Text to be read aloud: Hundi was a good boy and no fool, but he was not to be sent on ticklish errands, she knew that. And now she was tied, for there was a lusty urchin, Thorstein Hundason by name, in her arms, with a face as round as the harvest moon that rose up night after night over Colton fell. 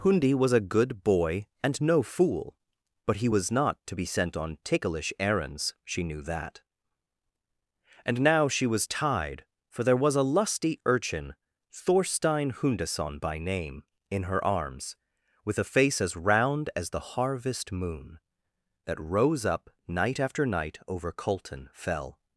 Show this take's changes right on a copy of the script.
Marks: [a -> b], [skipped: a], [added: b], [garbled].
Hundi was a good boy and no fool, but he was not to be sent on ticklish errands, she knew that. And now she was tied, for there was a lusty urchin, Thorstein Hundason by name, in her arms, with a face as round as the harvest moon that rose up night after night over Colton fell.